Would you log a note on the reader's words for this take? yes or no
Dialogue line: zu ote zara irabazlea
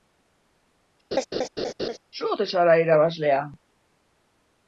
no